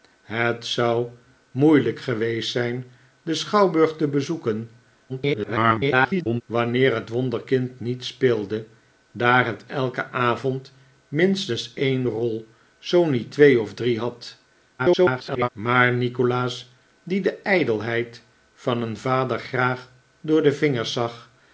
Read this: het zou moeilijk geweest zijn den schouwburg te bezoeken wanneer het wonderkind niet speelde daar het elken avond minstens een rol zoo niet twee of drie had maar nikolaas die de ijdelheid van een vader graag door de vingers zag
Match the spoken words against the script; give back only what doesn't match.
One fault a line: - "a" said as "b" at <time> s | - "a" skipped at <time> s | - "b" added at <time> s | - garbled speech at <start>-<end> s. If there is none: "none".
- garbled speech at 5.1-6.4 s
- garbled speech at 14.8-15.5 s